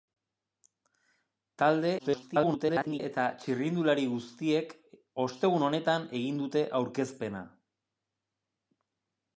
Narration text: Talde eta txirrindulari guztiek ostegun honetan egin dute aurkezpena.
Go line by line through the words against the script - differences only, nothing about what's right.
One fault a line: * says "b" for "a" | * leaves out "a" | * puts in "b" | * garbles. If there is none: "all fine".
* garbles